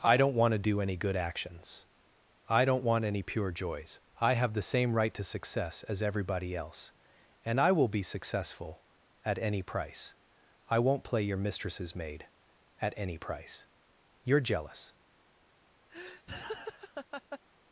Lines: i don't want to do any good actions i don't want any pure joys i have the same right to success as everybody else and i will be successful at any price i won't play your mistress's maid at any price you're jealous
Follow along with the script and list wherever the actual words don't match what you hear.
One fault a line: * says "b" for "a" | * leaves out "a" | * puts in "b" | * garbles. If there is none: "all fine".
all fine